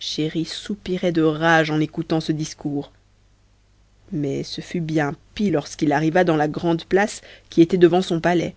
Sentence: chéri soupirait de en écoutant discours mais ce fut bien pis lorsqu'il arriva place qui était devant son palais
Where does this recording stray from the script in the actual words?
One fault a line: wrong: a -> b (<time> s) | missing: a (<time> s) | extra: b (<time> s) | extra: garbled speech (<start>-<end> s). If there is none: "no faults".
extra: rage (1.2 s)
extra: ce (2.2 s)
extra: dans la grande (6.2 s)